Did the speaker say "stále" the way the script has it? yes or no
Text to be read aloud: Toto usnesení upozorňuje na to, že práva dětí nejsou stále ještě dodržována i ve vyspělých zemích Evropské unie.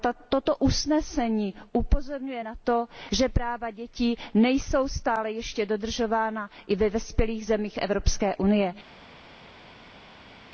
yes